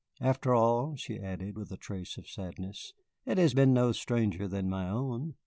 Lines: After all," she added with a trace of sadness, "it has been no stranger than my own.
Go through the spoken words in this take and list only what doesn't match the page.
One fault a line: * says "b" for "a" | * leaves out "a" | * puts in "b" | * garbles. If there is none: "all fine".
all fine